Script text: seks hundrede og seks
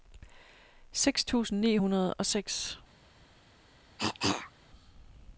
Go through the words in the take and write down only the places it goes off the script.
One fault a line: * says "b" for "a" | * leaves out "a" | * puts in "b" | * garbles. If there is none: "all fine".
* puts in "tusind ni"